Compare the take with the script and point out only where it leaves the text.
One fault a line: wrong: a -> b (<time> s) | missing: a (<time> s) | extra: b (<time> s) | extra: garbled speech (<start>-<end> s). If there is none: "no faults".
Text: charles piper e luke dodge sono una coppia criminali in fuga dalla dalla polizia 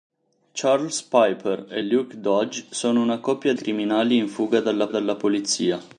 no faults